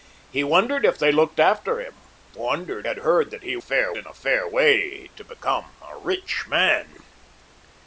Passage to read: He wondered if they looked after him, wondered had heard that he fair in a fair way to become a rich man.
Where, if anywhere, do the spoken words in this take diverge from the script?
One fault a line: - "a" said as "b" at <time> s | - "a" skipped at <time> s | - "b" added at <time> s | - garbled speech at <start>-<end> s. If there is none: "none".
none